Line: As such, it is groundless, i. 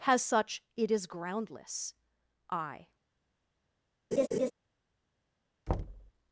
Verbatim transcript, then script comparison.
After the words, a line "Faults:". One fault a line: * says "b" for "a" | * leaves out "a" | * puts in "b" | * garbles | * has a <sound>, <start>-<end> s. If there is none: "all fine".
Has such, it is groundless, i.
Faults:
* says "Has" for "As"
* has a laugh, 4.1-4.5 s
* has a thud, 5.7-6.1 s